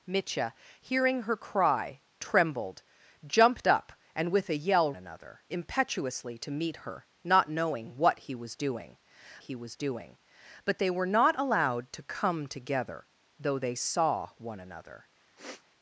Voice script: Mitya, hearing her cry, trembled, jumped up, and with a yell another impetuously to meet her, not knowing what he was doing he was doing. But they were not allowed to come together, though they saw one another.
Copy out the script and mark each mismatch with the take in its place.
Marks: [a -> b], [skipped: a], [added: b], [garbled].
Mitya, hearing her cry, trembled, jumped up, and with a yell another impetuously to meet her, not knowing what he was doing he was doing. But they were not allowed to come together, though they saw one another.